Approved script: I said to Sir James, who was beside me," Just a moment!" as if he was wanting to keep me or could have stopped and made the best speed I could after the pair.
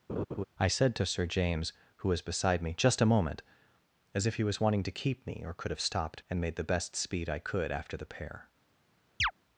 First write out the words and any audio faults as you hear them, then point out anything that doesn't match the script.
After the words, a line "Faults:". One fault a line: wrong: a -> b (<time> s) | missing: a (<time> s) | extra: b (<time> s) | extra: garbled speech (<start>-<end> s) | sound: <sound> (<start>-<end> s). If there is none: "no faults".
I said to Sir James, who was beside me," Just a moment!" as if he was wanting to keep me or could have stopped and made the best speed I could after the pair.
Faults:
sound: laugh (0.1-0.4 s)
sound: chirp (9.2-9.3 s)